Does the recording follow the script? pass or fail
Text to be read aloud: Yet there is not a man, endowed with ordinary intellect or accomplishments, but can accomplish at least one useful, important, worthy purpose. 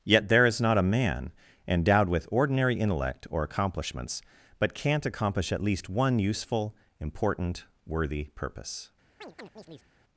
fail